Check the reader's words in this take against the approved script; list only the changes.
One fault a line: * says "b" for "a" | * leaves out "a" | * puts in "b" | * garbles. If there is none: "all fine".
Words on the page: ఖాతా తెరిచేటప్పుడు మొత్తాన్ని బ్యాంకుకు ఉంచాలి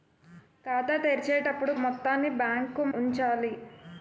all fine